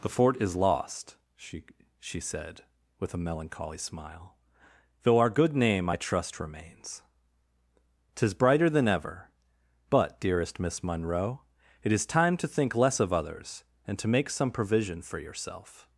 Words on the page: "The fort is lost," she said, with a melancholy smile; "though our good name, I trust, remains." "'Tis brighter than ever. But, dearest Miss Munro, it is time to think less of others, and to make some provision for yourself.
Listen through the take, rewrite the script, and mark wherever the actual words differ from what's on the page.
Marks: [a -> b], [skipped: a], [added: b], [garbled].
"The fort is lost," she [added: she] said, with a melancholy smile; "though our good name, I trust, remains." "'Tis brighter than ever. But, dearest Miss Munro, it is time to think less of others, and to make some provision for yourself.